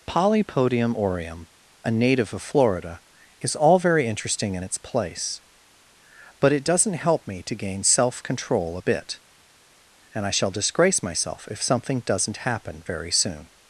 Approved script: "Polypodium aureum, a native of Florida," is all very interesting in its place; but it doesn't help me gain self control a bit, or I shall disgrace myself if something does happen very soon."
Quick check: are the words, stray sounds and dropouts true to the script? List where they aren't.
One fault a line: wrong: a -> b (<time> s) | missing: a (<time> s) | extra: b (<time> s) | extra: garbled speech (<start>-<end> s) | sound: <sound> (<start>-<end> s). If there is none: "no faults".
extra: to (7.4 s)
wrong: or -> and (10.1 s)
wrong: does -> doesn't (12.0 s)